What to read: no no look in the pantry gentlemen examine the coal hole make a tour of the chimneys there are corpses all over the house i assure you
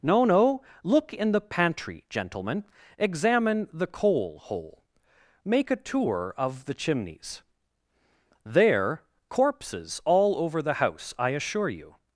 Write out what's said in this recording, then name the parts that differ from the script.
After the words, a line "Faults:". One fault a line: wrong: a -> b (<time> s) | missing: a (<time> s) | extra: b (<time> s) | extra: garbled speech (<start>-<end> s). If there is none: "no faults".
no no look in the pantry gentlemen examine the coal hole make a tour of the chimneys there corpses all over the house i assure you
Faults:
missing: are (9.0 s)